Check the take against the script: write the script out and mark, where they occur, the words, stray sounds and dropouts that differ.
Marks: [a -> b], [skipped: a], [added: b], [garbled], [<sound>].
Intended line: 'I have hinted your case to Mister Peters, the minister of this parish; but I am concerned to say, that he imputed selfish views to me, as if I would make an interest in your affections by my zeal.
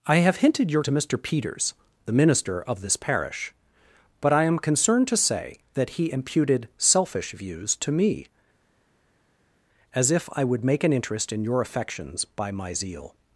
'I have hinted your [skipped: case] to Mister Peters, the minister of this parish; but I am concerned to say, that he imputed selfish views to me, as if I would make an interest in your affections by my zeal.